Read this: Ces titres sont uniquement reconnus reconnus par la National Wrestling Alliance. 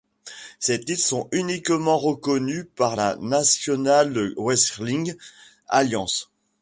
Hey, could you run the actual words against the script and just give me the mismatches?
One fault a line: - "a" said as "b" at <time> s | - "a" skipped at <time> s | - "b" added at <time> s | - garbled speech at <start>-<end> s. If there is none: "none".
- "reconnus" skipped at 2.6 s